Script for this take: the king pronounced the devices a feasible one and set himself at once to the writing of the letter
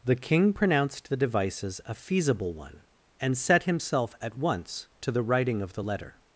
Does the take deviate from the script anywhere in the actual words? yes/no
no